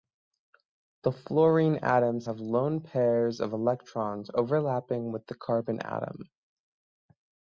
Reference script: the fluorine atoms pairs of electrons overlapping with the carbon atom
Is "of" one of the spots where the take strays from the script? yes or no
no